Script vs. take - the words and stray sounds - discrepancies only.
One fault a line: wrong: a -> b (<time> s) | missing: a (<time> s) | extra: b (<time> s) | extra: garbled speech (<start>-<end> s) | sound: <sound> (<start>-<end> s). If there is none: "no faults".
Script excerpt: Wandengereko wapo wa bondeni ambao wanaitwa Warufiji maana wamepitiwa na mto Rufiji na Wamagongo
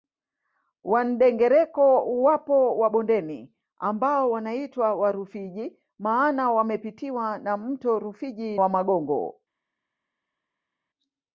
missing: na (8.6 s)